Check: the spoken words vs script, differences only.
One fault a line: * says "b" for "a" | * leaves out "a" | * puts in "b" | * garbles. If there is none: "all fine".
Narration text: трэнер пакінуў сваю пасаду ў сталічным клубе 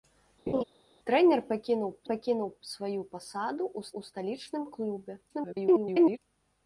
* puts in "пакінуў"
* puts in "ў"
* garbles